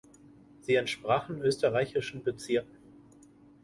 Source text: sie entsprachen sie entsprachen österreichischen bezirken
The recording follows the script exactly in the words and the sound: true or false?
false